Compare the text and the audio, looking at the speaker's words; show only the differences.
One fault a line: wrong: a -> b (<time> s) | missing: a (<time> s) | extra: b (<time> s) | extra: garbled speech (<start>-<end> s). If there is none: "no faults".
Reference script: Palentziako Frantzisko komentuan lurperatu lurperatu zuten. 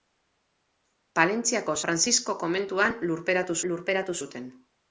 no faults